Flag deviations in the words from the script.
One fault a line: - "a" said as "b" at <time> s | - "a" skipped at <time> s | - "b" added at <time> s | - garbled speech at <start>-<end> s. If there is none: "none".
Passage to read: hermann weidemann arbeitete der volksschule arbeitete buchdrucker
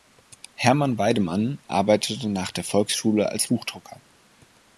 - "nach" added at 2.3 s
- "arbeitete" said as "als" at 3.3 s